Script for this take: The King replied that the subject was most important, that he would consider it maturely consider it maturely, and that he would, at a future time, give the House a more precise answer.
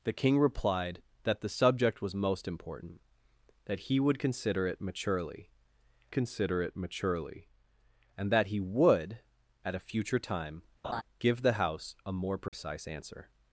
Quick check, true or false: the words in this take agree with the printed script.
true